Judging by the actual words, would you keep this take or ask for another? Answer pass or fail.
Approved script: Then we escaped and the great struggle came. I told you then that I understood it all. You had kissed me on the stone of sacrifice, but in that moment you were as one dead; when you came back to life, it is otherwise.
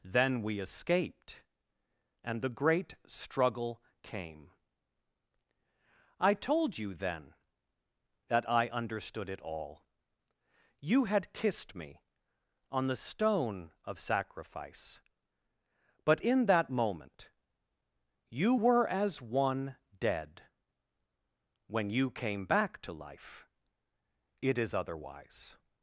pass